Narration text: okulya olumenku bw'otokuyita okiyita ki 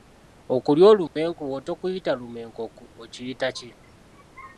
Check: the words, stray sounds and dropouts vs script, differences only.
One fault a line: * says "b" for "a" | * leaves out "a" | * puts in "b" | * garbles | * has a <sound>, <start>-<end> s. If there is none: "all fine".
* has a dropout, 1.1-1.2 s
* puts in "lumenku"